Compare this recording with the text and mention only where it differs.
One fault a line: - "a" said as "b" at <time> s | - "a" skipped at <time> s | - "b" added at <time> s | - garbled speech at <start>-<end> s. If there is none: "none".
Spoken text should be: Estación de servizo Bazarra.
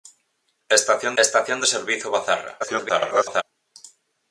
- "estación" added at 1.2 s
- garbled speech at 2.6-3.4 s